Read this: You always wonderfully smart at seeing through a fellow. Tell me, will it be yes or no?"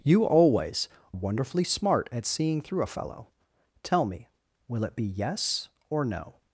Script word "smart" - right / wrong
right